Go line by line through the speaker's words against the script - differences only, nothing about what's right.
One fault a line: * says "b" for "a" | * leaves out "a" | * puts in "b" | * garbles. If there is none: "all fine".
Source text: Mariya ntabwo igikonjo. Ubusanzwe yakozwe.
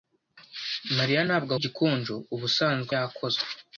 all fine